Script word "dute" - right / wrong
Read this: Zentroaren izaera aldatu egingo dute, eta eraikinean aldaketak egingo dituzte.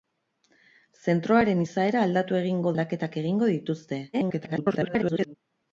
wrong